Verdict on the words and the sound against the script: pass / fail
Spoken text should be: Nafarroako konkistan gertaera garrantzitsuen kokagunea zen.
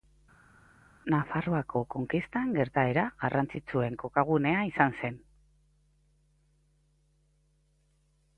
fail